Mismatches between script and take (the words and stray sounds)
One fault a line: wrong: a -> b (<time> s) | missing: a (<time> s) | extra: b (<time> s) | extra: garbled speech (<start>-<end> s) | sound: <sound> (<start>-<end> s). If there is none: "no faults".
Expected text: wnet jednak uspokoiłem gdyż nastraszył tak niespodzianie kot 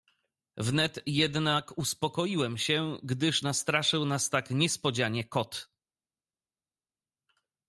extra: się (2.6 s)
extra: nas (4.1 s)